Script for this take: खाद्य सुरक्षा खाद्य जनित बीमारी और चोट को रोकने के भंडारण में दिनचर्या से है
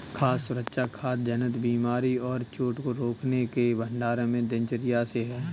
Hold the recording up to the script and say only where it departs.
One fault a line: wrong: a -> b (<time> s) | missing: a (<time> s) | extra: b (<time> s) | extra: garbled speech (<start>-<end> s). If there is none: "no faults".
no faults